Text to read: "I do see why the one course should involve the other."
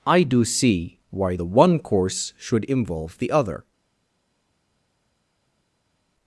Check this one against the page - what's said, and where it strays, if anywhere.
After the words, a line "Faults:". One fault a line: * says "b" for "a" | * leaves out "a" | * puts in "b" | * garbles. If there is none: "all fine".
"I do see why the one course should involve the other."
Faults:
all fine